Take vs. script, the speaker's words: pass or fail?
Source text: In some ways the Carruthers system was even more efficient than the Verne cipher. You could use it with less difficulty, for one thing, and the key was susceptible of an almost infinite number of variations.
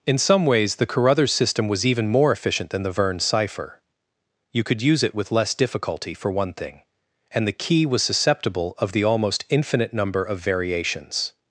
fail